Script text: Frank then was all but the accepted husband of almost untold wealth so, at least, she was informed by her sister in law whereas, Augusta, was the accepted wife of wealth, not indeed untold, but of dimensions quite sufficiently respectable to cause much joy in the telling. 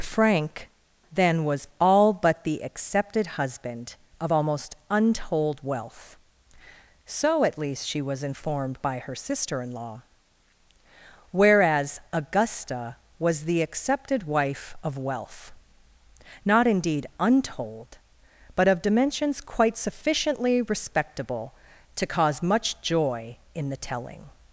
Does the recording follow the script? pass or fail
pass